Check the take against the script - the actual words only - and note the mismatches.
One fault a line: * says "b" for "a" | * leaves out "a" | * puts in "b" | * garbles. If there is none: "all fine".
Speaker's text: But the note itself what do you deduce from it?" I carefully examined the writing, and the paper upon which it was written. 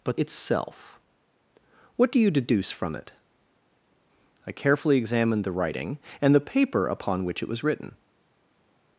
* leaves out "the note"